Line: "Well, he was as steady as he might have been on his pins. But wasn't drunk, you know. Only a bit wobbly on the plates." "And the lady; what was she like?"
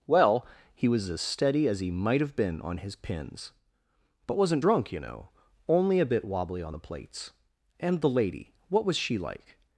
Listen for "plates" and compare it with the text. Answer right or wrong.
right